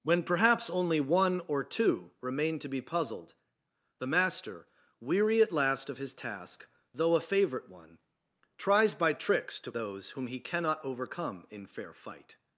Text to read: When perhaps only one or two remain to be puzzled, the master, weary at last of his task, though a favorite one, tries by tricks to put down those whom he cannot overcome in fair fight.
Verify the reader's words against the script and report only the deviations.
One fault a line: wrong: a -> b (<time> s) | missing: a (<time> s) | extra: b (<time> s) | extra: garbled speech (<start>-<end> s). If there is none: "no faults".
missing: put down (9.7 s)